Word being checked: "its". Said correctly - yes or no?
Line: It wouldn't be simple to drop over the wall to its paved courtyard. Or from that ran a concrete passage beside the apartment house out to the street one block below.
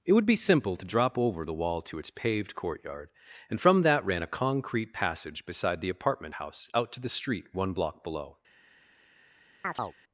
yes